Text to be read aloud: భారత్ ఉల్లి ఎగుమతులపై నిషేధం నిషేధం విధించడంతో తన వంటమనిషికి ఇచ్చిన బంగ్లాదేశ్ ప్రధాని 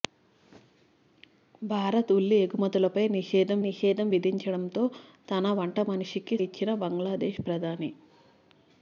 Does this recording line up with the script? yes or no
yes